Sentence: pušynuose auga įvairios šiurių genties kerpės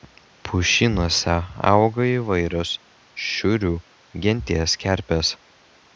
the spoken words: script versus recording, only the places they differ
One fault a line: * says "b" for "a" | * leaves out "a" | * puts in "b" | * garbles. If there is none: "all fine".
all fine